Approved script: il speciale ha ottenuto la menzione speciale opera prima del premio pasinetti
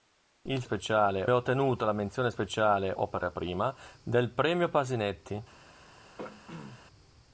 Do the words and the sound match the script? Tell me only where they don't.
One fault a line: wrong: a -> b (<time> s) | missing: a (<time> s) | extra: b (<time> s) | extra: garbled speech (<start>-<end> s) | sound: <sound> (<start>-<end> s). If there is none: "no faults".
sound: throat clearing (6.2-6.8 s)